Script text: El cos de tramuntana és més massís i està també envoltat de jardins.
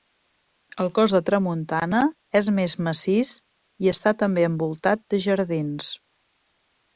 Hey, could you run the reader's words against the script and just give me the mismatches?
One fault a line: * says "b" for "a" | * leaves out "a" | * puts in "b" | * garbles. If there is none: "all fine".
all fine